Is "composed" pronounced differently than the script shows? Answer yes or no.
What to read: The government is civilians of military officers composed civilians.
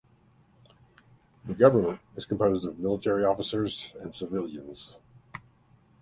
yes